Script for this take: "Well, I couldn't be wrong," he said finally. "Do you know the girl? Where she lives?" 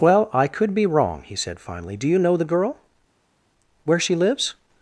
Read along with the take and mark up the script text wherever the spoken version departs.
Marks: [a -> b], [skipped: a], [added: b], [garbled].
"Well, I [couldn't -> could] be wrong," he said finally. "Do you know the girl? Where she lives?"